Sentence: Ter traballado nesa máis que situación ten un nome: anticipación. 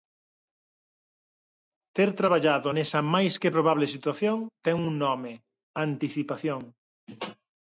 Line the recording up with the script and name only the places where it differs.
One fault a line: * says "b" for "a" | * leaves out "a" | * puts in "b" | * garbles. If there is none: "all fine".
* puts in "probable"